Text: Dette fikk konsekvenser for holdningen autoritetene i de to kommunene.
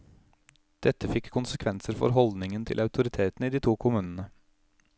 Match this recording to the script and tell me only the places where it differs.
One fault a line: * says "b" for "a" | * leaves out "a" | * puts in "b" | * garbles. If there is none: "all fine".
* puts in "til"